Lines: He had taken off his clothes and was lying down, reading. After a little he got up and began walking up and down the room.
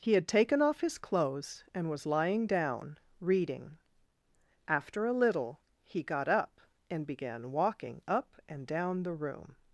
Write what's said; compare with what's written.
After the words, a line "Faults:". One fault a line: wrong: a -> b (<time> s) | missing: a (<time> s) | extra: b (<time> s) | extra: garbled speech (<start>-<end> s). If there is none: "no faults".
He had taken off his clothes and was lying down, reading. After a little he got up and began walking up and down the room.
Faults:
no faults